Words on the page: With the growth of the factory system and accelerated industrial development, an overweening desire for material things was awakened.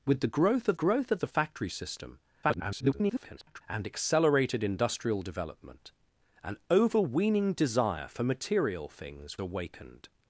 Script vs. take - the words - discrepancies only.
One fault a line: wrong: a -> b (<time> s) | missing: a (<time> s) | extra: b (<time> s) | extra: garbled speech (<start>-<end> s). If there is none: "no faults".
extra: growth of (0.7 s)
extra: garbled speech (2.4-3.6 s)
missing: was (9.4 s)